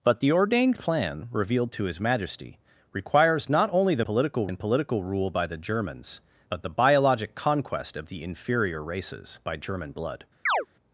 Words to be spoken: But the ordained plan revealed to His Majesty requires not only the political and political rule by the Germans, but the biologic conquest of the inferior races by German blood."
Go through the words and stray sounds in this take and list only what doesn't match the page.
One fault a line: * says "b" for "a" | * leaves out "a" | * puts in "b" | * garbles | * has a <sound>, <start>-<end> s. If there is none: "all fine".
* has a chirp, 10.5-10.7 s